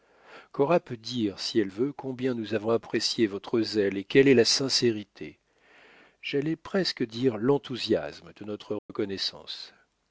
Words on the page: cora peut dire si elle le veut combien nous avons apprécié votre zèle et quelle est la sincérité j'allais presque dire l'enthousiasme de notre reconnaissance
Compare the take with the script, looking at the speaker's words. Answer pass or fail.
fail